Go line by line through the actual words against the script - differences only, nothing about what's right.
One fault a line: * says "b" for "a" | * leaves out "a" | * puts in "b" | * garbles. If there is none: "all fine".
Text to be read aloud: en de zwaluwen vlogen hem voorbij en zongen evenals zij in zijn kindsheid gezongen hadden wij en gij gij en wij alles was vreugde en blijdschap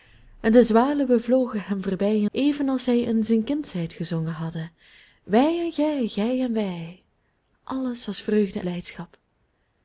* leaves out "en zongen"
* leaves out "en"